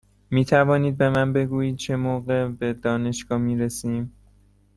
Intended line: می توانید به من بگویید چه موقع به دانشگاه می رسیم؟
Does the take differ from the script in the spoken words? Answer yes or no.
no